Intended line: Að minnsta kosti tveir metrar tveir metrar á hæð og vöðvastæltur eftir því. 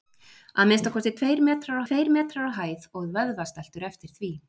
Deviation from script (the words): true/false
false